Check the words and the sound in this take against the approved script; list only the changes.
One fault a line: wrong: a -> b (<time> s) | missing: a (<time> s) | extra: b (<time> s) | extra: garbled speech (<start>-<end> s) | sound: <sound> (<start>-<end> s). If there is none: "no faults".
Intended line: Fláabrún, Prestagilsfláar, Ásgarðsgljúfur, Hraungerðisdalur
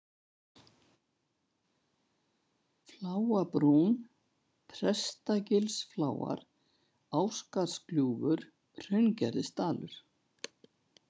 no faults